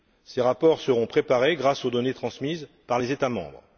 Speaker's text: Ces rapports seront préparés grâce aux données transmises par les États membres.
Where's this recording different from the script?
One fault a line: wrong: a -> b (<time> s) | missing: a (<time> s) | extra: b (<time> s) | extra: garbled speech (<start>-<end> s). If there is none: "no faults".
no faults